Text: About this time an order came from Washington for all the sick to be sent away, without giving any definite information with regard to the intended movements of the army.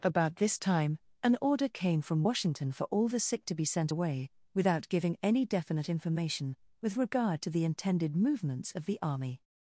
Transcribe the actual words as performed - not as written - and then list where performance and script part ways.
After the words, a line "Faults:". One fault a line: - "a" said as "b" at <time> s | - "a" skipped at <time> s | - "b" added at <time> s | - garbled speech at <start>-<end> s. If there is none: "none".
About this time an order came from Washington for all the sick to be sent away, without giving any definite information with regard to the intended movements of the army.
Faults:
none